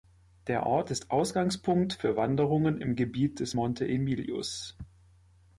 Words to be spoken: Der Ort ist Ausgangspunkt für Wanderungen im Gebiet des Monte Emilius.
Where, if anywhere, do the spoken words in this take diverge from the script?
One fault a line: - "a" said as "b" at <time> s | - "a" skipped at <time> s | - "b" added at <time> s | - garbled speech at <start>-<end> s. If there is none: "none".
none